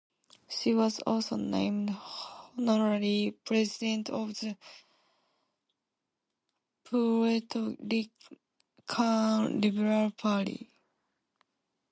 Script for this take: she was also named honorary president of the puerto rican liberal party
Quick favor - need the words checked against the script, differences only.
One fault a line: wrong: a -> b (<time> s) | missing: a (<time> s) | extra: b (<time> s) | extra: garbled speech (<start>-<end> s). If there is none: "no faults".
no faults